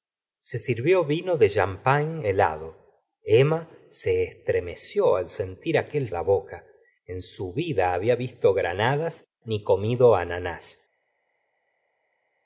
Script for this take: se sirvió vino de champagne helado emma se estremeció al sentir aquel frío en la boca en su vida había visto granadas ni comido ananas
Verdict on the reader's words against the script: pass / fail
fail